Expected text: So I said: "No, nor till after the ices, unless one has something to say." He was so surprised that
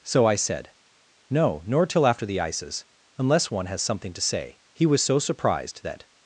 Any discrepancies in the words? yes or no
no